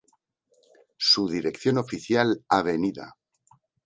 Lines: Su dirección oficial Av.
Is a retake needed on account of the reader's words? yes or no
no